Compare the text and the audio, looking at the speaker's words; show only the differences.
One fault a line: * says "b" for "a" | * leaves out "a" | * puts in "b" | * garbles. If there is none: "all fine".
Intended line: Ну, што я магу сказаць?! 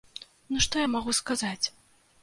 all fine